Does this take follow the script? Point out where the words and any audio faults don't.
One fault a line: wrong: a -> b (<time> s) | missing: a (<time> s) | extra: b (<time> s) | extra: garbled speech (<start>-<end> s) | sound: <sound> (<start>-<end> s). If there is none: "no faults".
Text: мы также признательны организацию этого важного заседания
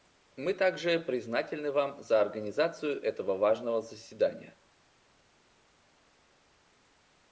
extra: вам за (1.7 s)